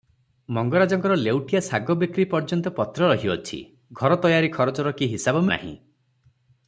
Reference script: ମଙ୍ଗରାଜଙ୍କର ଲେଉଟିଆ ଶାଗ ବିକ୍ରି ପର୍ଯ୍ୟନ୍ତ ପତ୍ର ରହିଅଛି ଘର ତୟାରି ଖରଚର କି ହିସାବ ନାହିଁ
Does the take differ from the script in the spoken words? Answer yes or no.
no